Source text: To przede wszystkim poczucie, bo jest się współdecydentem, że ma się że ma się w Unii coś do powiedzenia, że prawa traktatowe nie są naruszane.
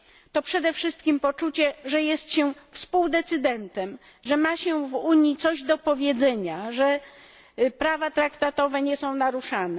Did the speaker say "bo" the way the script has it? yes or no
no